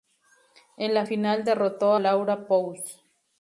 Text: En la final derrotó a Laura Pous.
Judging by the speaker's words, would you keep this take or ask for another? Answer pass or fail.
fail